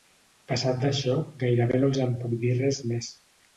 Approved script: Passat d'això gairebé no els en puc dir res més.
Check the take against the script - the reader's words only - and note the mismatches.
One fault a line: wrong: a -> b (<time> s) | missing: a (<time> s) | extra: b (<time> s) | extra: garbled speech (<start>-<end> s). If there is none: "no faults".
no faults